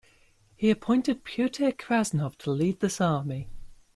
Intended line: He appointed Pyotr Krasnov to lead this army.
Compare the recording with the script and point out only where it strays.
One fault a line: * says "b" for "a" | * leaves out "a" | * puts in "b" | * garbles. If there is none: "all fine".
all fine